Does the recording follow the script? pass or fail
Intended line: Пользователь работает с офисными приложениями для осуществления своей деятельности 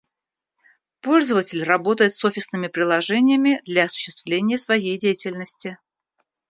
pass